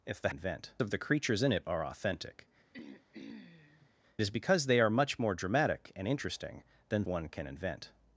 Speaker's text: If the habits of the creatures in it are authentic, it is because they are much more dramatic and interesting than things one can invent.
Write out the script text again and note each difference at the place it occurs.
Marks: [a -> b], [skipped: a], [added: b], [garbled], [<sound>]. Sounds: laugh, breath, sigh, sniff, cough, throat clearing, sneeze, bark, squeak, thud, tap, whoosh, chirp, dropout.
If the [habits -> invent] of the creatures in it are authentic, [skipped: it] [throat clearing] is because they are much more dramatic and interesting than [skipped: things] one can invent.